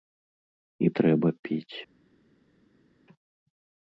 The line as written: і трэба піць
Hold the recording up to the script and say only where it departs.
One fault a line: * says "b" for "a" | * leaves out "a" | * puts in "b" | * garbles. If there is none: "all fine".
all fine